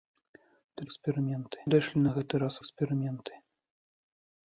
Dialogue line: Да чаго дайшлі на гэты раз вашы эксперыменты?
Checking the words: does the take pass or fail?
fail